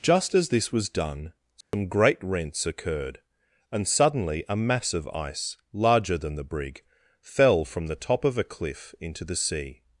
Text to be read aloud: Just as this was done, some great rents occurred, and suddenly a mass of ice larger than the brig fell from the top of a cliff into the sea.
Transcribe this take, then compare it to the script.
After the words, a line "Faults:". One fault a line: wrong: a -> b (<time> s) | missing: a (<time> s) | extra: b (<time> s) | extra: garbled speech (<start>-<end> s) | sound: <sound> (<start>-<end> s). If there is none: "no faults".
Just as this was done, some great rents occurred, and suddenly a mass of ice larger than the brig fell from the top of a cliff into the sea.
Faults:
sound: dropout (1.6-1.7 s)